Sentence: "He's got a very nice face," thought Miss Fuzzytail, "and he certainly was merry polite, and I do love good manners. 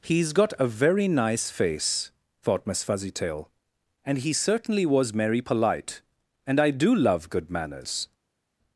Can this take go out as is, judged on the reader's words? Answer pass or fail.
pass